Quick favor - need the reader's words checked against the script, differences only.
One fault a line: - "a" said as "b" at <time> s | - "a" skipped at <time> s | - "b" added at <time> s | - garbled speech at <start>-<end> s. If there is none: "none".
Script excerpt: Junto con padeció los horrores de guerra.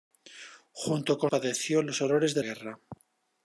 none